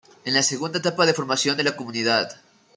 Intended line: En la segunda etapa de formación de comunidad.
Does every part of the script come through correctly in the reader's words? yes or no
no